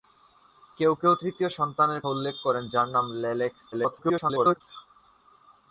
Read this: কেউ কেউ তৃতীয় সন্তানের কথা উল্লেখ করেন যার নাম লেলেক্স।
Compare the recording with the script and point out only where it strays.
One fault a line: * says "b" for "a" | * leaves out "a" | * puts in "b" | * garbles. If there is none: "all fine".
* leaves out "কথা"
* garbles